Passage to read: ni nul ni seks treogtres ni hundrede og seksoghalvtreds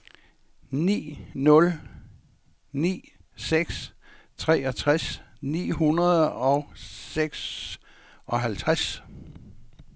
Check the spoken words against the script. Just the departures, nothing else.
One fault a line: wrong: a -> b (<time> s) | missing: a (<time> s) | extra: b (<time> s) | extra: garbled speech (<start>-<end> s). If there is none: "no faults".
no faults